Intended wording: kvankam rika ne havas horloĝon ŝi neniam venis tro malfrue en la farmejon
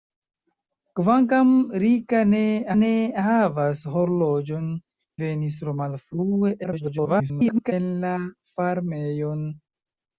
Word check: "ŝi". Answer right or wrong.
wrong